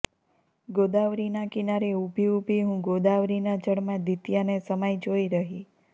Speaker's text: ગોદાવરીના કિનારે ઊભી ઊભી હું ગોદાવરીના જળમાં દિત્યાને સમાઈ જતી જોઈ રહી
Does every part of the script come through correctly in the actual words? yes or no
no